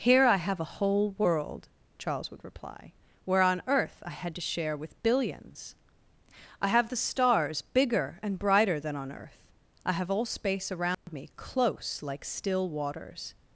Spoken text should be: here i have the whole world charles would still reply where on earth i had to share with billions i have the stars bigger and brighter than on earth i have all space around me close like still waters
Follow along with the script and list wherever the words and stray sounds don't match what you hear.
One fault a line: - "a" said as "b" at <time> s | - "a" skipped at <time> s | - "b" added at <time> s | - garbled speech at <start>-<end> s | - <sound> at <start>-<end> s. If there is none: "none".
- "the" said as "a" at 0.6 s
- "still" skipped at 2.4 s
- dropout at 10.9-11.1 s